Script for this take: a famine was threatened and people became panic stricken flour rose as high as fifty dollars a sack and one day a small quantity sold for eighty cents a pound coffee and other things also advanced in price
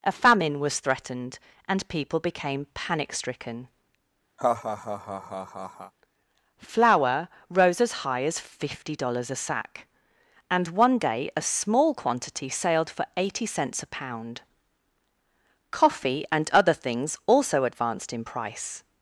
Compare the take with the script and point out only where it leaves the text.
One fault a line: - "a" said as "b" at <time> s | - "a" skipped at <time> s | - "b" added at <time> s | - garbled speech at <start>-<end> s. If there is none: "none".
- "sold" said as "sailed" at 12.5 s